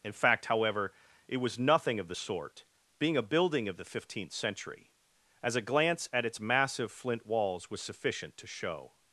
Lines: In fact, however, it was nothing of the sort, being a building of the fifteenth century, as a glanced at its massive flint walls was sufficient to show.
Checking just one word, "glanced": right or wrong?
wrong